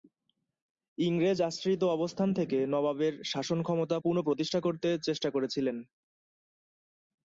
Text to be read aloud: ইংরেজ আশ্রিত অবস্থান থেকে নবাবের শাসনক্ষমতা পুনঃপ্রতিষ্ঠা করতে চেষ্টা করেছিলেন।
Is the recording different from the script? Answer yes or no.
no